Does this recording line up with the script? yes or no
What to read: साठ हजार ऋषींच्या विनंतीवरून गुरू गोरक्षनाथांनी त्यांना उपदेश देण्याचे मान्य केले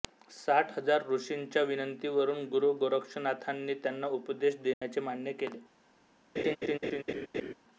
yes